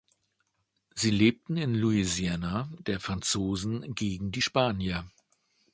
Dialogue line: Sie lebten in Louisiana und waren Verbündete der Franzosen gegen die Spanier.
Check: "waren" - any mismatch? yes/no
yes